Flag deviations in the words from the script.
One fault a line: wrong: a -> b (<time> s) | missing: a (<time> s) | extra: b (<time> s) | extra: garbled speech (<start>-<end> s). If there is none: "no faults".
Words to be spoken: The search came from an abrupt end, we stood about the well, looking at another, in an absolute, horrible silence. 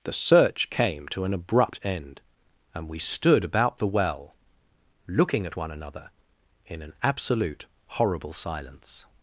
wrong: from -> to (1.1 s)
extra: and (2.7 s)
extra: one (5.6 s)